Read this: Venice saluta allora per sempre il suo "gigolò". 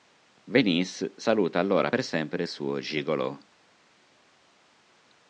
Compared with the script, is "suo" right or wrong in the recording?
right